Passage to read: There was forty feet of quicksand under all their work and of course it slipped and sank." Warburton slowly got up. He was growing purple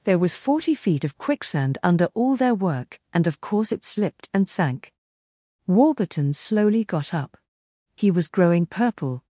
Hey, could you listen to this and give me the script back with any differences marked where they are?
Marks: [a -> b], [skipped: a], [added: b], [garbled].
There was forty feet of quicksand under all their work and of course it slipped and sank." Warburton slowly got up. He was growing purple